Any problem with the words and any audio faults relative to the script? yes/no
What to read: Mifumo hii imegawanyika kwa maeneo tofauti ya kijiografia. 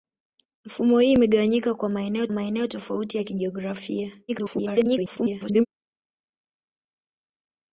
yes